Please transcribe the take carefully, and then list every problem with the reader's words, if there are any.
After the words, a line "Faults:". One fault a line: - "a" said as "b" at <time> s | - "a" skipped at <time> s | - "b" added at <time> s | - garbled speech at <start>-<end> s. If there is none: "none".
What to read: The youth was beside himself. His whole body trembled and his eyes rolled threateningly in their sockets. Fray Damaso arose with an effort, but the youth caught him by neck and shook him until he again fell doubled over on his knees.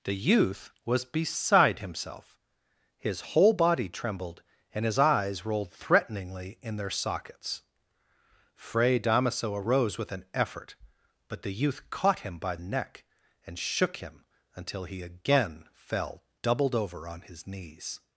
The youth was beside himself. His whole body trembled and his eyes rolled threateningly in their sockets. Fray Damaso arose with an effort, but the youth caught him by neck and shook him until he again fell doubled over on his knees.
Faults:
none